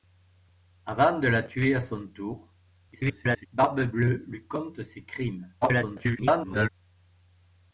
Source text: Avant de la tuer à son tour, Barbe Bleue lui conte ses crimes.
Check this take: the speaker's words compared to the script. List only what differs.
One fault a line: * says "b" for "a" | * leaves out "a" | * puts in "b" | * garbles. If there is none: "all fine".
* garbles
* garbles